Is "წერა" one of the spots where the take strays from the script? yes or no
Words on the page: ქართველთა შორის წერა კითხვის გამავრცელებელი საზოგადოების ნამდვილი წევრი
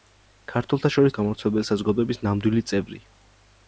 yes